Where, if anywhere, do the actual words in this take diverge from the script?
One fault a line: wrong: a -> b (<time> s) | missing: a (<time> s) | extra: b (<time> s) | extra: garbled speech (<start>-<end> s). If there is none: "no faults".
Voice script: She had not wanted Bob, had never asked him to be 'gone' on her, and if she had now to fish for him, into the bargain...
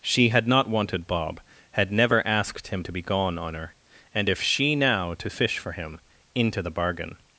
missing: had (4.8 s)